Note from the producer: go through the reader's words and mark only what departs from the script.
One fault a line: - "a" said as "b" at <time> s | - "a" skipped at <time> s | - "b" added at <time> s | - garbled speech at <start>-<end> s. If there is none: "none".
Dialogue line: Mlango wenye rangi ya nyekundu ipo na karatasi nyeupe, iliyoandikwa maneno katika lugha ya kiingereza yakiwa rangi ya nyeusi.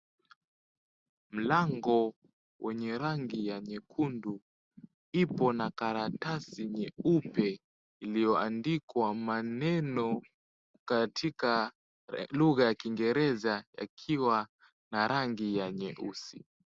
- "na" added at 14.9 s